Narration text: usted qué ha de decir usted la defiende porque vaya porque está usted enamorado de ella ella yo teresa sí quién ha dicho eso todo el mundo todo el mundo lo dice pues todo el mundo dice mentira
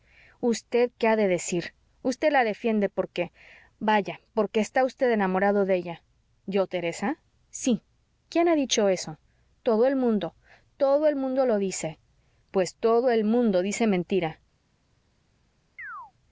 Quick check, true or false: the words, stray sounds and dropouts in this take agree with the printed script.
false